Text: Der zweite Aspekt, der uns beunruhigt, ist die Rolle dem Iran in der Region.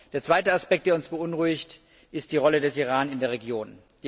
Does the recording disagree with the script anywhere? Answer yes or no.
yes